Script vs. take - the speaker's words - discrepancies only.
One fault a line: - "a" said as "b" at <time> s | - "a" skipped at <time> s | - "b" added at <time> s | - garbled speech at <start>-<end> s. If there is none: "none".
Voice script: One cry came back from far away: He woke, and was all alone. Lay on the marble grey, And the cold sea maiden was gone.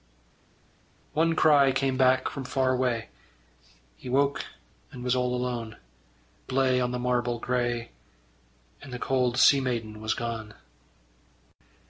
none